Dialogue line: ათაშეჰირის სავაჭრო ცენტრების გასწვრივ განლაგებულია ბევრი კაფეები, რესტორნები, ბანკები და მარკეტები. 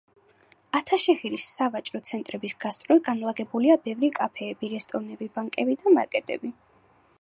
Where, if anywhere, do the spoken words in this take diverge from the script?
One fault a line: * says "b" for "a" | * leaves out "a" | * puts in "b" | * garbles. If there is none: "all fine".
all fine